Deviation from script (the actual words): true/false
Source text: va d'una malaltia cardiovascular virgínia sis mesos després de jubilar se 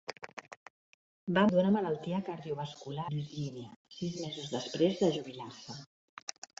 false